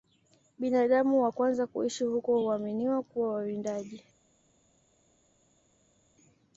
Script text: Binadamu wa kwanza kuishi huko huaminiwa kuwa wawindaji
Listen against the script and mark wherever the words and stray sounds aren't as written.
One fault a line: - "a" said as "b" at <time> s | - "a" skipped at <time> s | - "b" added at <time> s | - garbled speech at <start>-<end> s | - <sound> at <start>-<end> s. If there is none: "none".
none